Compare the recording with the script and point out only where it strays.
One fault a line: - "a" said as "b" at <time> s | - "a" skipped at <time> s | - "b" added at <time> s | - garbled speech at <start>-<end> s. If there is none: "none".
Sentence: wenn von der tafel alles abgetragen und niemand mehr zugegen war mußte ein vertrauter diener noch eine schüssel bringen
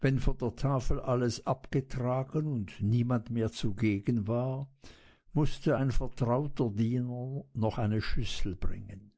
none